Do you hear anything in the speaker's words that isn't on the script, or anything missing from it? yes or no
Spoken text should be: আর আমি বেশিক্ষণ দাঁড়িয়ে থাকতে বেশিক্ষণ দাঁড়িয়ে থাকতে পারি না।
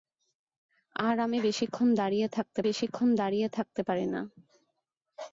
no